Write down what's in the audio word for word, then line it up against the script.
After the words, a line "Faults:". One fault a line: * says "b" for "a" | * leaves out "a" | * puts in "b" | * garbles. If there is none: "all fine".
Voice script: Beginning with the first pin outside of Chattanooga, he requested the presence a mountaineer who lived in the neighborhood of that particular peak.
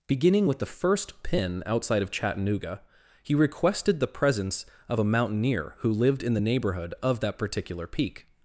Beginning with the first pin outside of Chattanooga, he requested the presence of a mountaineer who lived in the neighborhood of that particular peak.
Faults:
* puts in "of"